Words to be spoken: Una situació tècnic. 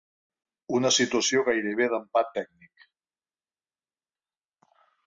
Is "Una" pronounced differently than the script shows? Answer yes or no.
no